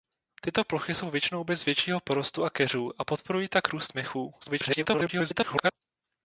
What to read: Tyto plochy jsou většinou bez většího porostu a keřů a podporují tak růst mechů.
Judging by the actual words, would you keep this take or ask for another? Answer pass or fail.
fail